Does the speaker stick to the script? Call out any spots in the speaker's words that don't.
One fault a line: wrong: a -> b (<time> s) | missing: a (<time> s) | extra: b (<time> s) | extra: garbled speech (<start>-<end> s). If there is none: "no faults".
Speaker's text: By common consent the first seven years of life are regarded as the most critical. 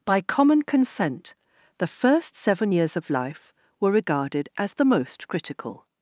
wrong: are -> were (3.8 s)